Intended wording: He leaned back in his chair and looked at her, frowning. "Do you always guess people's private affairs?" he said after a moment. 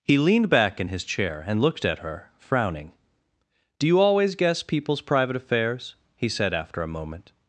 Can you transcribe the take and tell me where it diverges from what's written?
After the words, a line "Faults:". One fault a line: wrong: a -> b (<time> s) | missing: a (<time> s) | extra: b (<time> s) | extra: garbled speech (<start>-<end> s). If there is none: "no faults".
He leaned back in his chair and looked at her, frowning. "Do you always guess people's private affairs?" he said after a moment.
Faults:
no faults